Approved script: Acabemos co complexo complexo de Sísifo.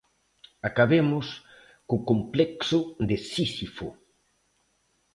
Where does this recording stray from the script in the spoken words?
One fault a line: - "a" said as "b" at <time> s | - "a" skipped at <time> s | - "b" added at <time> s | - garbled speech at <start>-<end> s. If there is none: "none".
- "complexo" skipped at 2.8 s